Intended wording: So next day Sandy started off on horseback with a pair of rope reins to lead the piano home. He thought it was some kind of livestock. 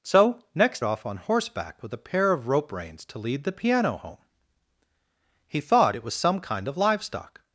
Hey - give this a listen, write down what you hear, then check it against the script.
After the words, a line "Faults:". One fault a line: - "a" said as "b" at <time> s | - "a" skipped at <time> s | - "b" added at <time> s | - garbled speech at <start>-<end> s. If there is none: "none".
So next off on horseback with a pair of rope reins to lead the piano home. He thought it was some kind of livestock.
Faults:
- "day Sandy started" skipped at 0.8 s